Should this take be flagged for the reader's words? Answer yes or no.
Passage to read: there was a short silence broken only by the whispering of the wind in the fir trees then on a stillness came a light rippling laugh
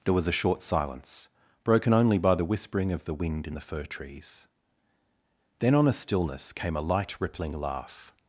no